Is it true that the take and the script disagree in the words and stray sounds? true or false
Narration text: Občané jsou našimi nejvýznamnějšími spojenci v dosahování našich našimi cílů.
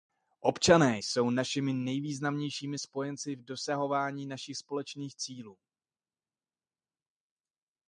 true